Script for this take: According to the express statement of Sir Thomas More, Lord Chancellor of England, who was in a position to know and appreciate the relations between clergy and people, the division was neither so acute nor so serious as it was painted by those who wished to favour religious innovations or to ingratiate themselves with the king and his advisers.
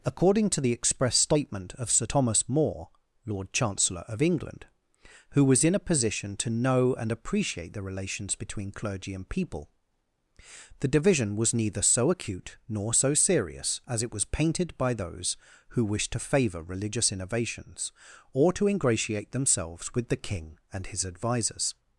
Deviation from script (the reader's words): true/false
false